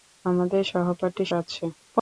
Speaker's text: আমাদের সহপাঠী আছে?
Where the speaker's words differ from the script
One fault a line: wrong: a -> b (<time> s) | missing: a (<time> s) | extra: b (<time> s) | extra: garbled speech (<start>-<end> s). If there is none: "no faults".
no faults